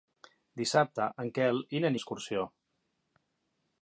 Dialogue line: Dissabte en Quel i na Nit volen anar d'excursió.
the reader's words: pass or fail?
fail